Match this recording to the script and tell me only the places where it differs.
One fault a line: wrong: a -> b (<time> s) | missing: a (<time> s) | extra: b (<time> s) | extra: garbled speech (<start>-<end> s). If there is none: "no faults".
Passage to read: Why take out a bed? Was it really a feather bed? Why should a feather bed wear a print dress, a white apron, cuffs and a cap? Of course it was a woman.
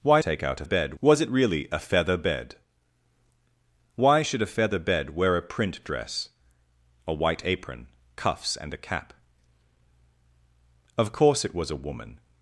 no faults